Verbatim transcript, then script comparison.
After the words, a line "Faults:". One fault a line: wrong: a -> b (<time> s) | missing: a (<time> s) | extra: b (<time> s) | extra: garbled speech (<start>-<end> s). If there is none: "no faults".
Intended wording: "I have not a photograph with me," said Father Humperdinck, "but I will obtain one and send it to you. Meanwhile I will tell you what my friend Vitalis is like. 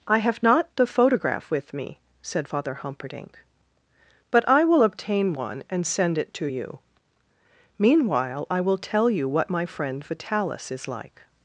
"I have not the photograph with me," said Father Humperdinck, "but I will obtain one and send it to you. Meanwhile I will tell you what my friend Vitalis is like.
Faults:
wrong: a -> the (0.8 s)